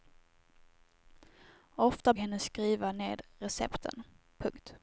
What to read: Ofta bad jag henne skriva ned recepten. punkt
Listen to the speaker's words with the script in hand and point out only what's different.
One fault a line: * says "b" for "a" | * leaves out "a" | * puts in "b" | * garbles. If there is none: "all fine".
* leaves out "bad jag"